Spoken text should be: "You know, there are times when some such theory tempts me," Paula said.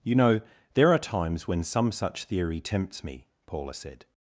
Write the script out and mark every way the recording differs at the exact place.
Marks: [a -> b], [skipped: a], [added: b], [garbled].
"You know, there are times when some such theory tempts me," Paula said.